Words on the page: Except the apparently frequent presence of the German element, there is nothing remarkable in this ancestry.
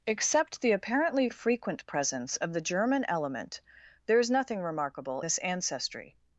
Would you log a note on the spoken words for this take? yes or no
yes